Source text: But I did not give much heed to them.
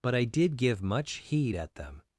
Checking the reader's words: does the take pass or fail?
fail